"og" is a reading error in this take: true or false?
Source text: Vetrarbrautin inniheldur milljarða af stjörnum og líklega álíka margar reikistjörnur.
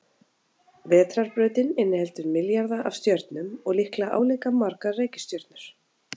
false